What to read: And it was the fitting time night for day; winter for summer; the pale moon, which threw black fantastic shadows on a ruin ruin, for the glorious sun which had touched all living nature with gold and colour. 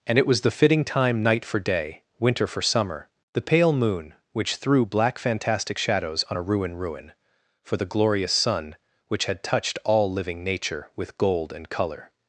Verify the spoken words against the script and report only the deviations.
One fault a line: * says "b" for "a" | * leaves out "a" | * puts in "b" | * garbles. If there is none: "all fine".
all fine